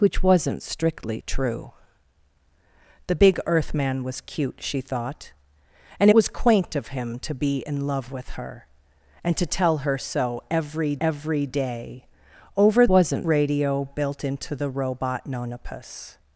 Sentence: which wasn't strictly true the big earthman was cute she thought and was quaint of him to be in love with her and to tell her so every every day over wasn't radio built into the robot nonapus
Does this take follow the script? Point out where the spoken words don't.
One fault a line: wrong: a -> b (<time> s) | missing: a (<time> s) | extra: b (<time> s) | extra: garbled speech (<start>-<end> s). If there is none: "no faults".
no faults